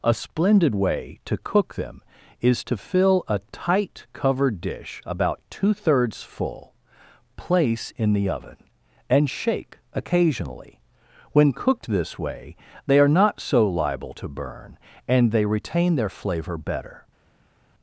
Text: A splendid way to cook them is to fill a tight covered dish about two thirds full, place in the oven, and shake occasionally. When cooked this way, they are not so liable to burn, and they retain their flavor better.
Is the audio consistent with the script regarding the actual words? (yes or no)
yes